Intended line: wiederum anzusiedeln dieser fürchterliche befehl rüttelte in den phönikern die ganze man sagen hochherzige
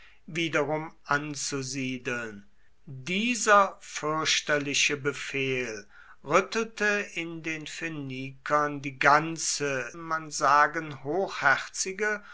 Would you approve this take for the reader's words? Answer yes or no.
yes